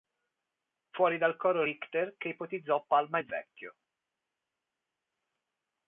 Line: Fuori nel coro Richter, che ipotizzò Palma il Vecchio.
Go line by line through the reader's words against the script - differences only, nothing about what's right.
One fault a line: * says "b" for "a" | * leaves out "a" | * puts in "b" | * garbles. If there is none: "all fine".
* says "dal" for "nel"